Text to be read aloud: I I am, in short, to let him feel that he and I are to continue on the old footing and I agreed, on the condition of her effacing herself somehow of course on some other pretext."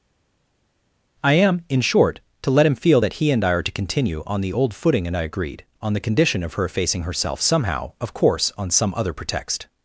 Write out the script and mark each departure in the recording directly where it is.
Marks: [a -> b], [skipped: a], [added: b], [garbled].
I [skipped: I] am, in short, to let him feel that he and I are to continue on the old footing and I agreed, on the condition of her effacing herself somehow of course on some other pretext."